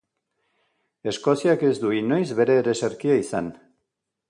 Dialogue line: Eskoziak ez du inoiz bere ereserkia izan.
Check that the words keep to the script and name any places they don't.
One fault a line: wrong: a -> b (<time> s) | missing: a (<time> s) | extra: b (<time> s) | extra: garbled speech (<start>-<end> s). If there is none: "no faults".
no faults